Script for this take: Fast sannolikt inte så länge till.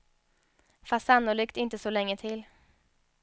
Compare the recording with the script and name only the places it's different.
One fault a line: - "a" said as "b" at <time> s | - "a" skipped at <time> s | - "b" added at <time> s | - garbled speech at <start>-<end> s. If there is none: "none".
none